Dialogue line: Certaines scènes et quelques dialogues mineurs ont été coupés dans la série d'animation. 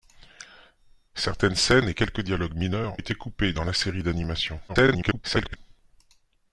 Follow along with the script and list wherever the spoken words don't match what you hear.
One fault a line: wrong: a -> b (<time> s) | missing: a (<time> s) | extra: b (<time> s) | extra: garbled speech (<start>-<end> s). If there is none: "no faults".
missing: ont (3.0 s)
extra: garbled speech (4.7-5.6 s)